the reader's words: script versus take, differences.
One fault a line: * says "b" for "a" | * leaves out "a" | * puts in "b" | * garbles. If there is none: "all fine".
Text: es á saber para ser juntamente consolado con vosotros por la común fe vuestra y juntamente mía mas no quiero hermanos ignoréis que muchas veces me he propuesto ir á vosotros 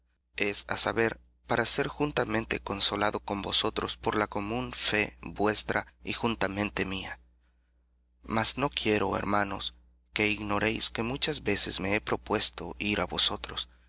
* puts in "que"